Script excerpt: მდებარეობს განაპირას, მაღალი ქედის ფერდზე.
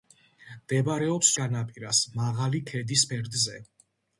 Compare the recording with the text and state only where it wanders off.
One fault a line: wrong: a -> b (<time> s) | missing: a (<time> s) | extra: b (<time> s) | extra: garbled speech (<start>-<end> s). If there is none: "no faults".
no faults